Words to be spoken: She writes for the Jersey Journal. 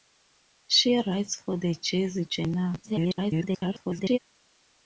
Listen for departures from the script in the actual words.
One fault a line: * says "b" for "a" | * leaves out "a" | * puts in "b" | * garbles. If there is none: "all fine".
* garbles